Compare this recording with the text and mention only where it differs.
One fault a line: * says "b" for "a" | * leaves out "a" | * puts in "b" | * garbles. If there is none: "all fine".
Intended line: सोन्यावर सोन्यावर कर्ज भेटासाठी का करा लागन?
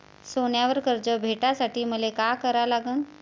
* leaves out "सोन्यावर"
* puts in "मले"